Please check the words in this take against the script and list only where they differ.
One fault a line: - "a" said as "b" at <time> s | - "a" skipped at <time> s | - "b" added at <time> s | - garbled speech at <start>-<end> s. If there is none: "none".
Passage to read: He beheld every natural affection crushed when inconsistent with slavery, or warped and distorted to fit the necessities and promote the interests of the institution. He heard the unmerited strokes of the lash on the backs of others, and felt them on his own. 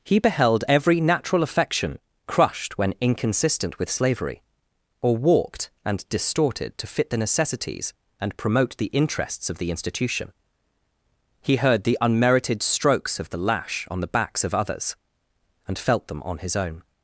none